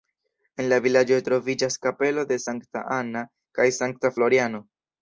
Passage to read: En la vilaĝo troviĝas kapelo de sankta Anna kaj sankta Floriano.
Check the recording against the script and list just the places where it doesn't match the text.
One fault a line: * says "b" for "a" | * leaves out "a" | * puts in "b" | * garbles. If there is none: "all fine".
all fine